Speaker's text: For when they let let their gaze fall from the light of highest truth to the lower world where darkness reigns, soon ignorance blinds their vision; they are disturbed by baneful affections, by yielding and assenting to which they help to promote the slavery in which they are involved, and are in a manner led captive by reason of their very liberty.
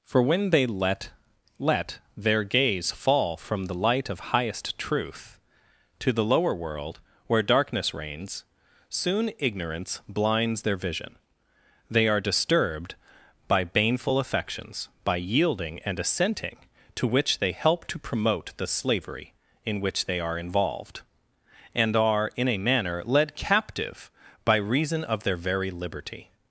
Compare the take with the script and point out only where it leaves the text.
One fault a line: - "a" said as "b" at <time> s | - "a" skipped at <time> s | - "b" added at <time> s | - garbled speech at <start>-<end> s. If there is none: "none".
none